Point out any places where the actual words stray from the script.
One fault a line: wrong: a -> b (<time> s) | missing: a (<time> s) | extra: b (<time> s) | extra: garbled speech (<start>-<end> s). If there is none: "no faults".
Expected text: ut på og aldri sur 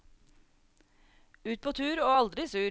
extra: tur (1.7 s)